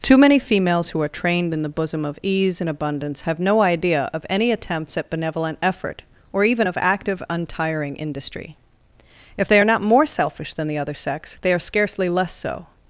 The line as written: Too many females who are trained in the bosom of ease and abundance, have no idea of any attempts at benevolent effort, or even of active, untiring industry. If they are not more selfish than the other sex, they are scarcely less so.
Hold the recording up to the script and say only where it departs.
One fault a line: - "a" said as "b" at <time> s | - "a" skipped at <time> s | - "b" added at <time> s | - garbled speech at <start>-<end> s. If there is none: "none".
none